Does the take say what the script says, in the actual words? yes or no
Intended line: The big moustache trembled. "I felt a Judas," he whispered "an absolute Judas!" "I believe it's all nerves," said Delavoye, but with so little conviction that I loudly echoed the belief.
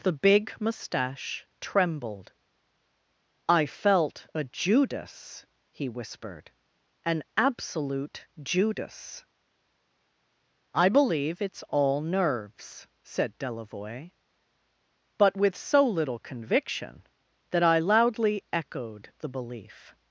yes